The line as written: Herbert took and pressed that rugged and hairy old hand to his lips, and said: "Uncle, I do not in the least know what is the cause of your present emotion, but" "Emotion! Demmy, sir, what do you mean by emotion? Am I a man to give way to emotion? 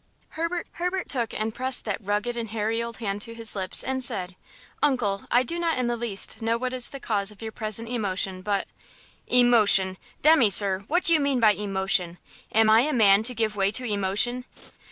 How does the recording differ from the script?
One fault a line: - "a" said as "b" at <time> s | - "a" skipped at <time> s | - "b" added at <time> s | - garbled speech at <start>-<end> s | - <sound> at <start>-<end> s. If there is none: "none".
- "herbert" added at 0.7 s
- laugh at 14.6-14.7 s